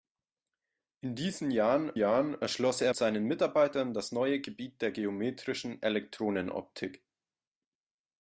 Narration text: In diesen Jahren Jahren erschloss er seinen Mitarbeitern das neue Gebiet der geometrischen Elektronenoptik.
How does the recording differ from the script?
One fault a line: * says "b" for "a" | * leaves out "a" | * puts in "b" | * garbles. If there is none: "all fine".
all fine